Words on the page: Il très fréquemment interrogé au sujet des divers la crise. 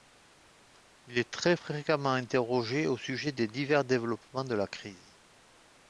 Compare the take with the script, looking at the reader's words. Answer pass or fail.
fail